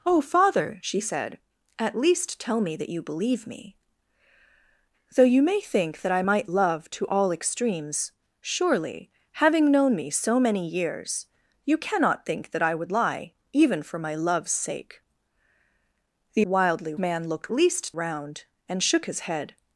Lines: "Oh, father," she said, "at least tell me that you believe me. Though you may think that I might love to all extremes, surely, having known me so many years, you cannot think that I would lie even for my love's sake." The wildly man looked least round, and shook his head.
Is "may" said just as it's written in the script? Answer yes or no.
yes